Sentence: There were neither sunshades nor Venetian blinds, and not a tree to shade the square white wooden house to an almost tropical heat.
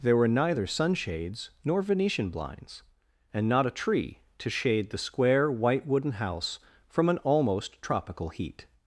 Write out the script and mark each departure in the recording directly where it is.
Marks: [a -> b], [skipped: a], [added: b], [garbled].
There were neither sunshades nor Venetian blinds, and not a tree to shade the square white wooden house [to -> from] an almost tropical heat.